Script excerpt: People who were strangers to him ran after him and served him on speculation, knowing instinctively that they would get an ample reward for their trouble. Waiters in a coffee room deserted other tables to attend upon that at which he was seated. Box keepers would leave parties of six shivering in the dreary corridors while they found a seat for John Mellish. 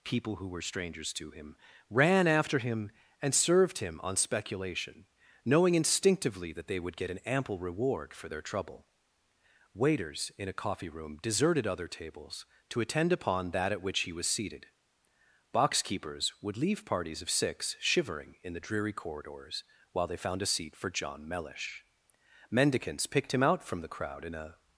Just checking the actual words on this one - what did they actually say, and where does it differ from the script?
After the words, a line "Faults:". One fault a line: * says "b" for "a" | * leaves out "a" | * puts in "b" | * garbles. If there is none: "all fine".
People who were strangers to him ran after him and served him on speculation, knowing instinctively that they would get an ample reward for their trouble. Waiters in a coffee room deserted other tables to attend upon that at which he was seated. Box keepers would leave parties of six shivering in the dreary corridors while they found a seat for John Mellish. Mendicants picked him out from the crowd in a
Faults:
* puts in "Mendicants picked him out from the crowd in a"